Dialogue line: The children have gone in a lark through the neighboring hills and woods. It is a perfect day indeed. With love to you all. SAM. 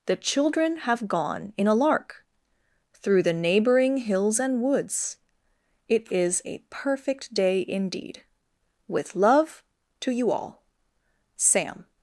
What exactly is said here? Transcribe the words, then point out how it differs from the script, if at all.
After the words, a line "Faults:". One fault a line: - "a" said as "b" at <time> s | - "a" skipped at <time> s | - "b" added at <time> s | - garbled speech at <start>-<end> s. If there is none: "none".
The children have gone in a lark through the neighboring hills and woods. It is a perfect day indeed. With love to you all. SAM.
Faults:
none